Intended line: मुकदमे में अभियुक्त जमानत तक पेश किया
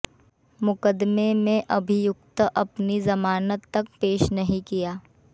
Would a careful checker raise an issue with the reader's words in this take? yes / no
yes